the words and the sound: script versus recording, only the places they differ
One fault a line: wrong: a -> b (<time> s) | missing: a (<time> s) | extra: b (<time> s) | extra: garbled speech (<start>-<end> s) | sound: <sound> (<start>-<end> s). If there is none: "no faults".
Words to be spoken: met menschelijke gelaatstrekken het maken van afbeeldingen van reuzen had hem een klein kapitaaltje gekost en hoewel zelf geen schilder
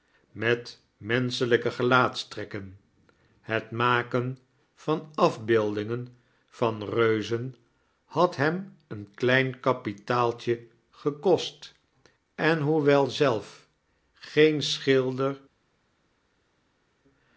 no faults